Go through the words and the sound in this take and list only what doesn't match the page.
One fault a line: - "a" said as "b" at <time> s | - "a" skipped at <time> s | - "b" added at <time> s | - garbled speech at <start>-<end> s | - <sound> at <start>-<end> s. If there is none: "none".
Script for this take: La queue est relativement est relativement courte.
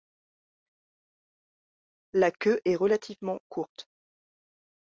- "est relativement" skipped at 3.4 s